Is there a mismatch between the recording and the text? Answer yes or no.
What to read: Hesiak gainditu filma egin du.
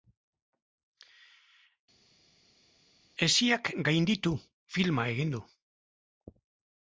no